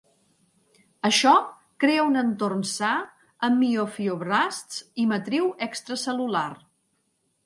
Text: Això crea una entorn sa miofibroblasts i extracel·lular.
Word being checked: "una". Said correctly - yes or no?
no